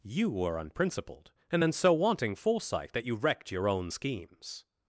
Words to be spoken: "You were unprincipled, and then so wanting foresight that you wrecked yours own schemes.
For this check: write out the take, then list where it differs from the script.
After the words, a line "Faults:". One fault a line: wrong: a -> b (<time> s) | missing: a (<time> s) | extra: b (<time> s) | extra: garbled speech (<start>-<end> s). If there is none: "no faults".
"You were unprincipled, and then so wanting foresight that you wrecked your own schemes.
Faults:
wrong: yours -> your (3.5 s)